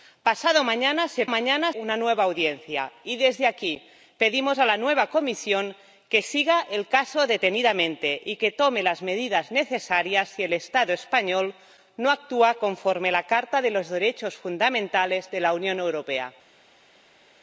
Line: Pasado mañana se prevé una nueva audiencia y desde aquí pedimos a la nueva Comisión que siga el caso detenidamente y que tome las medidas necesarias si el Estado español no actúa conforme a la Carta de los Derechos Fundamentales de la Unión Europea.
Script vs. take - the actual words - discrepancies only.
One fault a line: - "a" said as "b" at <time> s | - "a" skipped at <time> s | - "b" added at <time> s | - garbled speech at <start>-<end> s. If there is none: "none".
- "prevé" said as "mañana" at 1.3 s